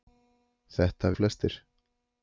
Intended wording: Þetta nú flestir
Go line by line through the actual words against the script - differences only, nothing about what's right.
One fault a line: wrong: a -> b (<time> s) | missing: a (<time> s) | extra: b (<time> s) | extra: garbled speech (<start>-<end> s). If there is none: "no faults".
no faults